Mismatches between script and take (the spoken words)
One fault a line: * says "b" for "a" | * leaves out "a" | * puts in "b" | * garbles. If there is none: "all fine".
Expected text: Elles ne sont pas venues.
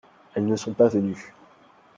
all fine